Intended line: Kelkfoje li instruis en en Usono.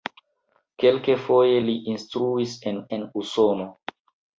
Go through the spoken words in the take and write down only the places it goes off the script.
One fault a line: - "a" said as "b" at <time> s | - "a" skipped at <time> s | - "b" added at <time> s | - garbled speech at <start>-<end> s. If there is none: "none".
none